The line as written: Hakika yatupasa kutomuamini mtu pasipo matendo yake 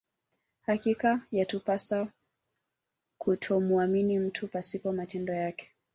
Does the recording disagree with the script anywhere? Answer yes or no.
no